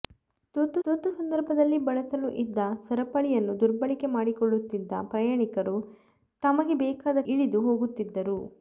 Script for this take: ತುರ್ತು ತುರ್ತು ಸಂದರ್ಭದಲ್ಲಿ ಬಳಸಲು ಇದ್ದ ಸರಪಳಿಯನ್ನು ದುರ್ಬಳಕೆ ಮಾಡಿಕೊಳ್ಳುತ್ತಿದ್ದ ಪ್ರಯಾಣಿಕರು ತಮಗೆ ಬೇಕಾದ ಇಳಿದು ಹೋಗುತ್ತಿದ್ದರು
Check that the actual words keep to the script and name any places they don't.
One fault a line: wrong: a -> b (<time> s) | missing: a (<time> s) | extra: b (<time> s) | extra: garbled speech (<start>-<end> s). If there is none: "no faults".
no faults